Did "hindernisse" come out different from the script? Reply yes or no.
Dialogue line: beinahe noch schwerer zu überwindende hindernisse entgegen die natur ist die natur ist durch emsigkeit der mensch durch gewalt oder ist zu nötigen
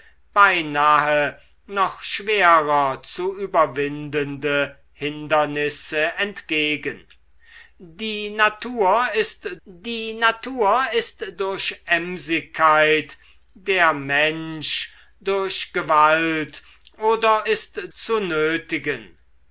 no